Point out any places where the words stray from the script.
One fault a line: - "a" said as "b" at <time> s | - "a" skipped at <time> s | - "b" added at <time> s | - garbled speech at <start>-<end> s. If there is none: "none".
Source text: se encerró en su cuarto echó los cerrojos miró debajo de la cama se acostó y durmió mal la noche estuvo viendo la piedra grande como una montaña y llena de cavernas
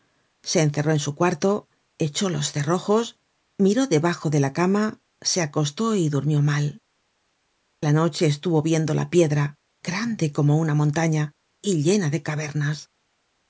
none